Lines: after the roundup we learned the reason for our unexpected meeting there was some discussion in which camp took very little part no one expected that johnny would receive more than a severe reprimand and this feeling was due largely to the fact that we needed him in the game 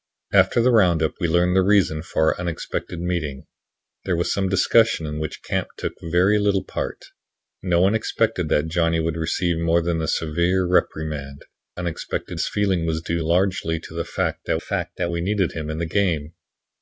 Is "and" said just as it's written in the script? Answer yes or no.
no